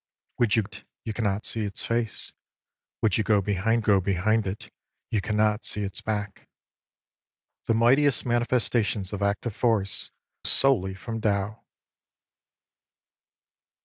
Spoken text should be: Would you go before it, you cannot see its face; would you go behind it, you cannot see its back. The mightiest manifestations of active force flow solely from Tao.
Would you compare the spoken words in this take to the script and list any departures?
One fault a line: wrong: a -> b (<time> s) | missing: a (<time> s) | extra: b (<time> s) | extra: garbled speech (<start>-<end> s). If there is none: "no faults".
missing: go before (0.6 s)
extra: go behind (3.8 s)
missing: flow (10.1 s)